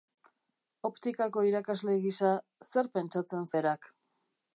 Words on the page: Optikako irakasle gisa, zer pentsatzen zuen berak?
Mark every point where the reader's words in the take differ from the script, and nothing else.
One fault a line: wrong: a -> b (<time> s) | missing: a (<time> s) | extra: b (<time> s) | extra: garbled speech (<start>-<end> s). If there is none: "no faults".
missing: zuen (3.5 s)